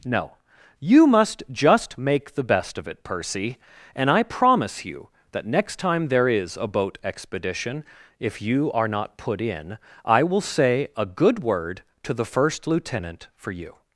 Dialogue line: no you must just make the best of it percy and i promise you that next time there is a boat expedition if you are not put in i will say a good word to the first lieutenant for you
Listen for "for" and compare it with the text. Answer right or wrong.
right